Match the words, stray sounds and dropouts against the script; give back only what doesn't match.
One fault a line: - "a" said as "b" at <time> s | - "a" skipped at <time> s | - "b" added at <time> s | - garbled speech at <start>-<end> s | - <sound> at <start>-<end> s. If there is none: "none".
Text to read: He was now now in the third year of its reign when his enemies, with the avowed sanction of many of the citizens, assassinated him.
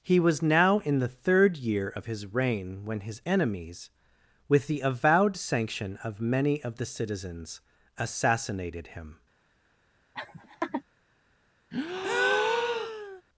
- "now" skipped at 0.8 s
- "its" said as "his" at 2.0 s
- laugh at 10.1-10.8 s
- breath at 11.7-13.2 s